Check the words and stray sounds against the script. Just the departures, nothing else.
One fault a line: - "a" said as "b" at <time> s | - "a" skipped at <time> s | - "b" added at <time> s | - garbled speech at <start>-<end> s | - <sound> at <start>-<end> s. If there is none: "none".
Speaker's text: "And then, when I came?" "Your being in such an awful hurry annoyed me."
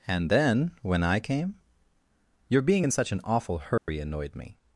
- dropout at 3.8-3.9 s